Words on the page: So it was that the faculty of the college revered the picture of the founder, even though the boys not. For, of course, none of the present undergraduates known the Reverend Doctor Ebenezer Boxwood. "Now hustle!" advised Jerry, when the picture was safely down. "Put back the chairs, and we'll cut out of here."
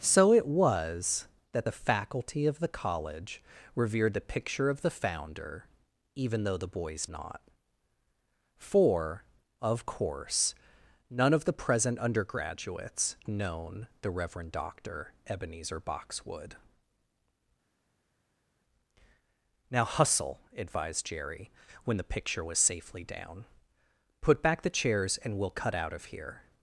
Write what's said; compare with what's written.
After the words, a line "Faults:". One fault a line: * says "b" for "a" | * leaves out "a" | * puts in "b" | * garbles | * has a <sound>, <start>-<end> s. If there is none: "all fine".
So it was that the faculty of the college revered the picture of the founder, even though the boys not. For, of course, none of the present undergraduates known the Reverend Doctor Ebenezer Boxwood. "Now hustle!" advised Jerry, when the picture was safely down. "Put back the chairs, and we'll cut out of here."
Faults:
all fine